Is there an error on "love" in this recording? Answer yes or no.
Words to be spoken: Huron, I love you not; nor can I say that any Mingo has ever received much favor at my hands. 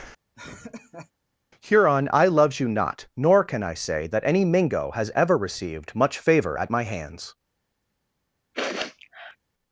yes